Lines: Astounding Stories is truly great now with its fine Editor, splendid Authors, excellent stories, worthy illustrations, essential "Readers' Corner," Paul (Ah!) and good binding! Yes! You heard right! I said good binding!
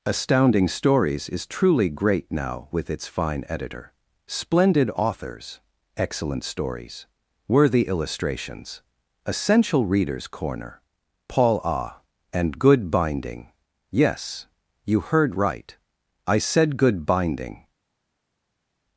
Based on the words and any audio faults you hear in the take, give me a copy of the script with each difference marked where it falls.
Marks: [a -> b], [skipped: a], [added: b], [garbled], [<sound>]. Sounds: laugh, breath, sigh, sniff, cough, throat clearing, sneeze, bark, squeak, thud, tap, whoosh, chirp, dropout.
Astounding Stories is truly great now with its fine Editor, splendid Authors, excellent stories, worthy illustrations, essential "Readers' Corner," Paul (Ah!) and good binding! Yes! You heard right! I said good binding!